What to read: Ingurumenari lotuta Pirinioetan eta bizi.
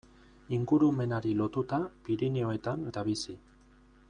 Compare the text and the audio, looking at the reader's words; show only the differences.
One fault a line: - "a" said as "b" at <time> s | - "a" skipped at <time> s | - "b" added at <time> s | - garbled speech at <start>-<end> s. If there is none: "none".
none